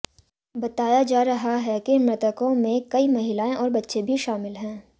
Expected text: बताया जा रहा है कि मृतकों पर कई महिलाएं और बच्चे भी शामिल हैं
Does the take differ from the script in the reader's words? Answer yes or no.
yes